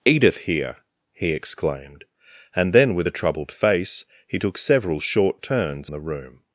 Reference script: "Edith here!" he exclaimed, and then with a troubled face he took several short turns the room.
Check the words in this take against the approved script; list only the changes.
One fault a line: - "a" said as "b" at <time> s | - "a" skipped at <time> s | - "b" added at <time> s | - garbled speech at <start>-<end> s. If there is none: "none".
none